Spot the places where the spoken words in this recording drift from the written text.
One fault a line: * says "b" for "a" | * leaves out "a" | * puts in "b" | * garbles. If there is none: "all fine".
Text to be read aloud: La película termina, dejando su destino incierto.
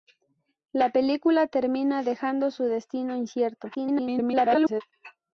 * garbles